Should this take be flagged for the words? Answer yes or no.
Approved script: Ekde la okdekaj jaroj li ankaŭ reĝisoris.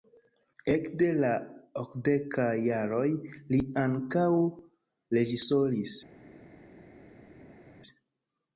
no